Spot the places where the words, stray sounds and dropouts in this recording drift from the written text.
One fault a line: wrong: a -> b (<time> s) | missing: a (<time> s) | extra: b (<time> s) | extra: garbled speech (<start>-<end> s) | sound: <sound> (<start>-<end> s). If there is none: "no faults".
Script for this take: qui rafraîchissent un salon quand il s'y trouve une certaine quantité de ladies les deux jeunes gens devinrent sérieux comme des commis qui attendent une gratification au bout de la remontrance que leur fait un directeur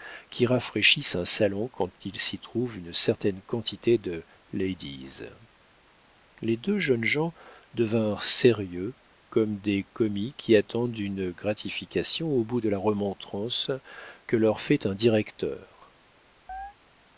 sound: chirp (16.5-16.7 s)